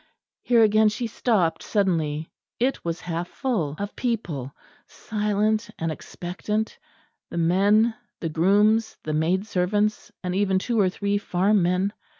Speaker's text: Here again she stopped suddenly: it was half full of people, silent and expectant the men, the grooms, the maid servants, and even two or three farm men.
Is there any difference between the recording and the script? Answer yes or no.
no